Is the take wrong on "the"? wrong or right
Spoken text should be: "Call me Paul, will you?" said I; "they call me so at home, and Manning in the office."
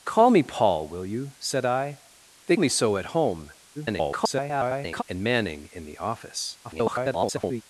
right